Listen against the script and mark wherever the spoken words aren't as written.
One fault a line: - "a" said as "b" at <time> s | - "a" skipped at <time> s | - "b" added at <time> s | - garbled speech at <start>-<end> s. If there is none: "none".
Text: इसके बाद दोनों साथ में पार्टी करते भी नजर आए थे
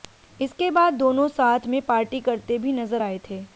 none